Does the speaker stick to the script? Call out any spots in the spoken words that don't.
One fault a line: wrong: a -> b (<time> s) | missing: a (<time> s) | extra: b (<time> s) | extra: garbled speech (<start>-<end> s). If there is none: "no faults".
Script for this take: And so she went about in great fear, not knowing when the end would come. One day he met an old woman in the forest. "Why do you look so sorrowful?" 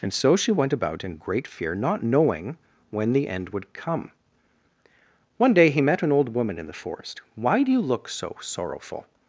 no faults